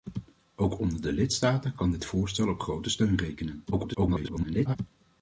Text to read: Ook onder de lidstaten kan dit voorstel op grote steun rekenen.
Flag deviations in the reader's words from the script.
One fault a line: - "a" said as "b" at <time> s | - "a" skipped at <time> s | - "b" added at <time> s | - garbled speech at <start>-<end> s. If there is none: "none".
- garbled speech at 3.7-4.8 s